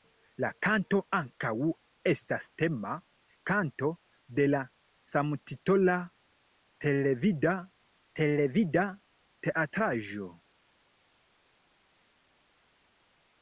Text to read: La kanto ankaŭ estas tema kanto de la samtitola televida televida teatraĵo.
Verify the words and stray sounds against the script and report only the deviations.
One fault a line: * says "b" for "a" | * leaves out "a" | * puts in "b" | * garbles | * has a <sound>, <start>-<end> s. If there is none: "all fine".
all fine